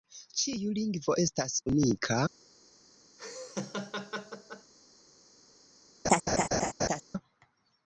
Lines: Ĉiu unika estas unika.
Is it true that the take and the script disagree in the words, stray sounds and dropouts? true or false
true